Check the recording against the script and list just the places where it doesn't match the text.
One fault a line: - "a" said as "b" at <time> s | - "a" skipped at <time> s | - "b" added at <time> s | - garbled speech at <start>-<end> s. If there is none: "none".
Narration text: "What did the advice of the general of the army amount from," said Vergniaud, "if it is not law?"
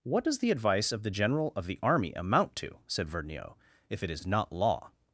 - "did" said as "does" at 0.2 s
- "from" said as "to" at 2.6 s